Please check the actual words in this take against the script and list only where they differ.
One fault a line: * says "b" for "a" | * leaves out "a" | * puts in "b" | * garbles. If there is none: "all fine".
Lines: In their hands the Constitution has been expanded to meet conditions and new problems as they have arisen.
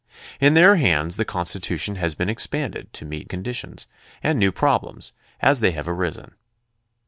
all fine